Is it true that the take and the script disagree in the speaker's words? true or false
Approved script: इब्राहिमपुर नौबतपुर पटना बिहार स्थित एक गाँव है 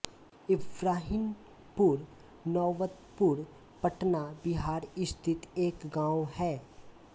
false